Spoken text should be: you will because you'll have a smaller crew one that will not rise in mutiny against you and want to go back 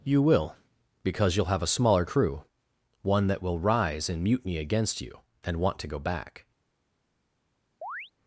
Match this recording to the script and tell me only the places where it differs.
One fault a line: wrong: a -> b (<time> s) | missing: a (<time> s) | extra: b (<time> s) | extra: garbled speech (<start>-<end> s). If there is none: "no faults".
missing: not (3.6 s)